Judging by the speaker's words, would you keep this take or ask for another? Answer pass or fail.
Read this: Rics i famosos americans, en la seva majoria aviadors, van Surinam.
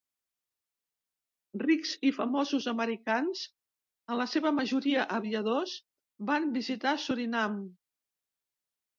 fail